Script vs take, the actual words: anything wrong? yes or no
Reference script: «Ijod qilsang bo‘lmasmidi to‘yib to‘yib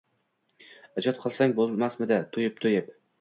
no